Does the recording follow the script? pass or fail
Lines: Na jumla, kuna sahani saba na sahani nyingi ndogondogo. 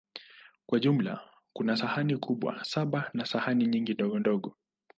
fail